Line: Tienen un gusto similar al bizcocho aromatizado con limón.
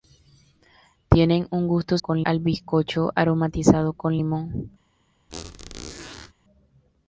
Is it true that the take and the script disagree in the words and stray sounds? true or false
true